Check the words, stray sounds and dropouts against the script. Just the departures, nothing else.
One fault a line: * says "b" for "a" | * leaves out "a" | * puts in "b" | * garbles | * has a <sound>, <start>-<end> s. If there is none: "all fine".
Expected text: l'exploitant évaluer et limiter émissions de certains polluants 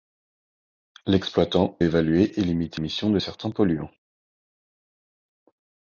all fine